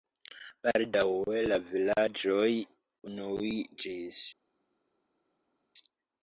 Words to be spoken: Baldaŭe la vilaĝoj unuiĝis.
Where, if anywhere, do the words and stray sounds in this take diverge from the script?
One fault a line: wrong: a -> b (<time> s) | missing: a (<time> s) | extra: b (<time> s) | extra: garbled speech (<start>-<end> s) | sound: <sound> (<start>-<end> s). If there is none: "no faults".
no faults